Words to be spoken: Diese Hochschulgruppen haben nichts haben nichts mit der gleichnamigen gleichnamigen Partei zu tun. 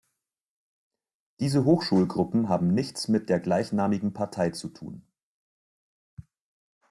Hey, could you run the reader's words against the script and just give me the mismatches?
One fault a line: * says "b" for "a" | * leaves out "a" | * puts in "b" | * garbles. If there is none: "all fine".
* leaves out "haben nichts"
* leaves out "gleichnamigen"